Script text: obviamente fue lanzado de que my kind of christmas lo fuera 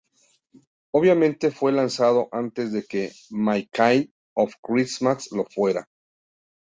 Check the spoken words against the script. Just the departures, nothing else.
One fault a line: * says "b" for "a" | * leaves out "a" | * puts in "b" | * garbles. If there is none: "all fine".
* puts in "antes"